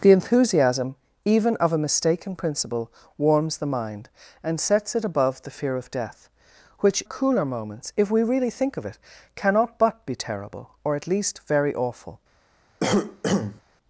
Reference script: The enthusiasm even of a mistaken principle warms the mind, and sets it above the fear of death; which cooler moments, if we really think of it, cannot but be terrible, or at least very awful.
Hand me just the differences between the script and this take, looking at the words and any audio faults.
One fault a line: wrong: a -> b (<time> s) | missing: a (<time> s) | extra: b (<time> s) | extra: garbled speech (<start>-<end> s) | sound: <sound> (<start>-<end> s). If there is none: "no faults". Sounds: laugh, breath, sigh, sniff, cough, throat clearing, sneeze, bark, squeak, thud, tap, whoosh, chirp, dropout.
sound: cough (12.8-13.6 s)